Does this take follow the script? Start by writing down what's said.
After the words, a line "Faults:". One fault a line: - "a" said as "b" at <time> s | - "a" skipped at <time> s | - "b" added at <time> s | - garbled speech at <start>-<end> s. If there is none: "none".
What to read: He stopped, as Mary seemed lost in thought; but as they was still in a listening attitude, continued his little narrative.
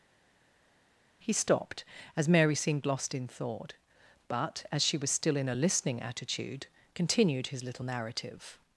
He stopped, as Mary seemed lost in thought; but as she was still in a listening attitude, continued his little narrative.
Faults:
- "they" said as "she" at 4.8 s